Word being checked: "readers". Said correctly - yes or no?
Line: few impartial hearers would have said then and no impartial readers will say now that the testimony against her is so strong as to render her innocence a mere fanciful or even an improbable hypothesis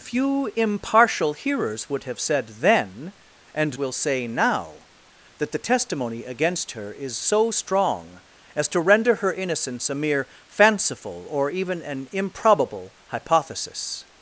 no